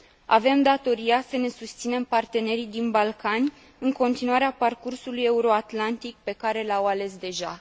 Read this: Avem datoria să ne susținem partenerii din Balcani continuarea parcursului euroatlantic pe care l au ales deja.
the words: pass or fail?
fail